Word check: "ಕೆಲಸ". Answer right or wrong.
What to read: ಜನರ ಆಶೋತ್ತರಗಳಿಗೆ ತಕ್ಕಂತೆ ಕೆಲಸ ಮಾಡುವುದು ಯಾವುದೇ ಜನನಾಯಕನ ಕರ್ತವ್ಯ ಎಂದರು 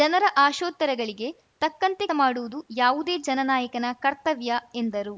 wrong